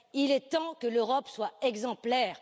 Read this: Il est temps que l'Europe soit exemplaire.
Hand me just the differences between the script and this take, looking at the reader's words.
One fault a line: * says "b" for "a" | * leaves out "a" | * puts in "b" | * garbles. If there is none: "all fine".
all fine